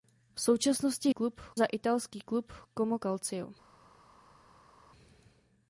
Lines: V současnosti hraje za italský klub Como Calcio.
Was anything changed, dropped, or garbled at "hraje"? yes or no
yes